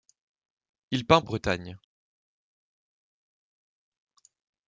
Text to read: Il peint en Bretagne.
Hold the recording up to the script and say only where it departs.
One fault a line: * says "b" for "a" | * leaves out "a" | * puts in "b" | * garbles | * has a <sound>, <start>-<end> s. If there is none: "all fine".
all fine